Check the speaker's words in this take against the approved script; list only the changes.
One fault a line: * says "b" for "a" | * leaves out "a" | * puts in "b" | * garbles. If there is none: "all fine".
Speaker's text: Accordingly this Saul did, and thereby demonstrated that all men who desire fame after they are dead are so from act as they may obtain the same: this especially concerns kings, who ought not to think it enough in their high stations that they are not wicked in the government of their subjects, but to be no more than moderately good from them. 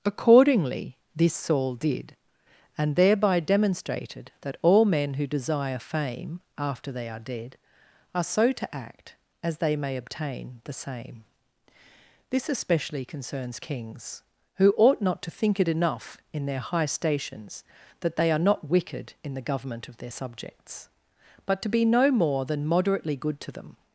* says "to" for "from"
* says "to" for "from"